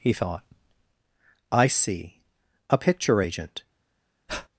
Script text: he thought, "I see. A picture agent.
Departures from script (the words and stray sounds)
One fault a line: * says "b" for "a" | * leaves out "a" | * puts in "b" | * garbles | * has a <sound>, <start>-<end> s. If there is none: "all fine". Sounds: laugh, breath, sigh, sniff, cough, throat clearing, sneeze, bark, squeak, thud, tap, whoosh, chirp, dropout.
* has a breath, 4.3-4.5 s